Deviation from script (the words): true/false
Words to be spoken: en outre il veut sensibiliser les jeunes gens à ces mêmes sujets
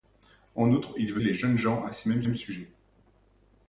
true